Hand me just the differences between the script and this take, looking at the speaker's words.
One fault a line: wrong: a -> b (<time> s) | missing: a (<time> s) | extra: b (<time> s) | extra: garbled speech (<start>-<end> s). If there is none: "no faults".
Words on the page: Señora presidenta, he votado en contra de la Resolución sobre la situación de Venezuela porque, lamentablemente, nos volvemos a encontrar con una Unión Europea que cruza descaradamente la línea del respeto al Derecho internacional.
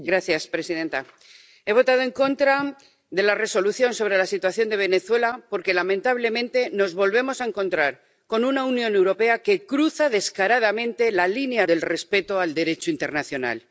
no faults